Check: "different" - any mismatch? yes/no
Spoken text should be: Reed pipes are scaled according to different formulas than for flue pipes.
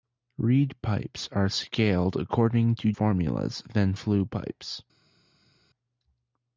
yes